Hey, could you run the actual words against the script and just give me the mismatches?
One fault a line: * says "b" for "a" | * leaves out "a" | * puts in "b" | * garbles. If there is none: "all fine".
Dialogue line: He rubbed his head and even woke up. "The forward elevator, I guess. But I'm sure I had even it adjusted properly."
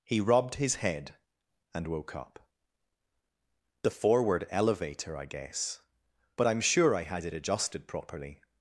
* leaves out "even"
* leaves out "even"